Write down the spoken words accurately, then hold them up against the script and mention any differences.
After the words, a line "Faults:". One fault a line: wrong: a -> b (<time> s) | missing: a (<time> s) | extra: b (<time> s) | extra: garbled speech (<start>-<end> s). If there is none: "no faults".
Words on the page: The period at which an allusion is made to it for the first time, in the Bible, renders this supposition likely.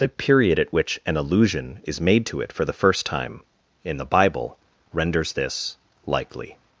The period at which an allusion is made to it for the first time, in the Bible, renders this likely.
Faults:
missing: supposition (5.8 s)